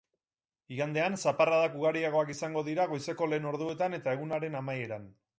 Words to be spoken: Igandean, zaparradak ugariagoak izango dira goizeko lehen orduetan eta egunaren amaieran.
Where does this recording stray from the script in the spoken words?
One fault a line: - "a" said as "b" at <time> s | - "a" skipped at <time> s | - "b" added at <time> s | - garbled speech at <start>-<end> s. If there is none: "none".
none